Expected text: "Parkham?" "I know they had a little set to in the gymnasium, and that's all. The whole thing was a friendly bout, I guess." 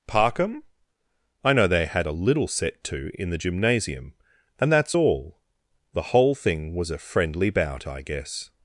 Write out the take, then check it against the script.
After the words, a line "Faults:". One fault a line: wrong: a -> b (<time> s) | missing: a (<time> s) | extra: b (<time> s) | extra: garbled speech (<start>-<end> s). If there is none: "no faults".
"Parkham?" "I know they had a little set to in the gymnasium, and that's all. The whole thing was a friendly bout, I guess."
Faults:
no faults